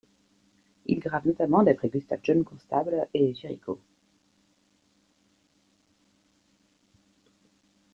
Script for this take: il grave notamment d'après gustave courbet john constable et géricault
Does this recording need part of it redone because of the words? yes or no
yes